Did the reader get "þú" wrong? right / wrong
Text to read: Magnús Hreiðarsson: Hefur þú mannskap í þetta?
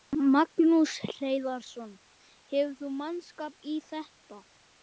right